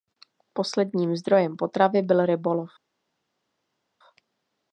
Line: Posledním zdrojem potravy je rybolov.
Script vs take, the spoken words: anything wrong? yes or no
yes